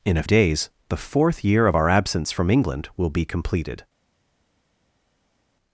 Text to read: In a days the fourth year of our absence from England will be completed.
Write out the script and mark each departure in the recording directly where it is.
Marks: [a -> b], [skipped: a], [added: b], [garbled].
In a days the fourth year of our absence from England will be completed.